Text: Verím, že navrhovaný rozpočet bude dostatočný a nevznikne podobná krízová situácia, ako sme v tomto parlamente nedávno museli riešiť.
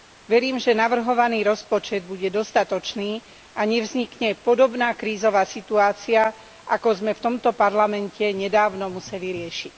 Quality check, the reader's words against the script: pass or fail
pass